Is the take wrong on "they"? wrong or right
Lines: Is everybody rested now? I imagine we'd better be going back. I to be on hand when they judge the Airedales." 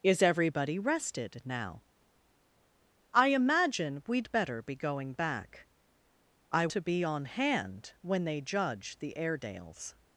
right